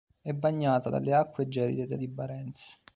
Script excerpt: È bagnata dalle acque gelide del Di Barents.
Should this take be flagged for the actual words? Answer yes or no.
no